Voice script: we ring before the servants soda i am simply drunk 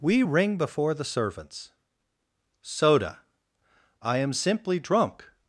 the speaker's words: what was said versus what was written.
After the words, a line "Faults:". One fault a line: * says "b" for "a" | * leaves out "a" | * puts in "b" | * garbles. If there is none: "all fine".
we ring before the servants soda i am simply drunk
Faults:
all fine